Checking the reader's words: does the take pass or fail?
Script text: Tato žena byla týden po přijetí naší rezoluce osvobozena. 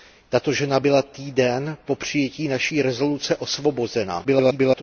fail